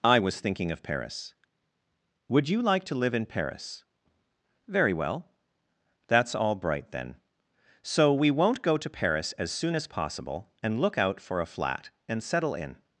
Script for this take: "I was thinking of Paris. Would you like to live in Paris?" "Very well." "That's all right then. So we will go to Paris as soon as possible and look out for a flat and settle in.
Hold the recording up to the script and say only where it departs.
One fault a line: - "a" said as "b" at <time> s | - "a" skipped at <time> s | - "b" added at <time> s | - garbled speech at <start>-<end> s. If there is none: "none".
- "right" said as "bright" at 6.5 s
- "will" said as "won't" at 8.3 s